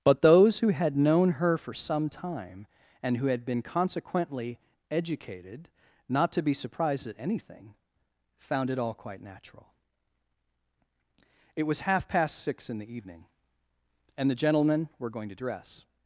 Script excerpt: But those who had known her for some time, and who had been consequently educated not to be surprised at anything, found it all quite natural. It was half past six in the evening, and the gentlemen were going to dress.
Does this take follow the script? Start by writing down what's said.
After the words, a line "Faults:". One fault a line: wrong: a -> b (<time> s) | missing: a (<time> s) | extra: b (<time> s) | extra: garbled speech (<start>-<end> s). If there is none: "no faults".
But those who had known her for some time, and who had been consequently educated not to be surprised at anything, found it all quite natural. It was half past six in the evening, and the gentlemen were going to dress.
Faults:
no faults